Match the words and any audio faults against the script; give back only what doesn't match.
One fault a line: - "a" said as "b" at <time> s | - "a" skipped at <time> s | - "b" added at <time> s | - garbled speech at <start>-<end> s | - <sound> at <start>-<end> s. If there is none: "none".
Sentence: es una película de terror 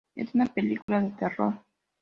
- dropout at 0.8-0.9 s